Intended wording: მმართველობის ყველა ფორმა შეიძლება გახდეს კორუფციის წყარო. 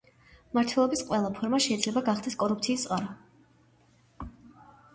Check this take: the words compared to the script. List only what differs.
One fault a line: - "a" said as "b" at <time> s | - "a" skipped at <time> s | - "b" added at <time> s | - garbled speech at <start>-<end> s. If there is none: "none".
none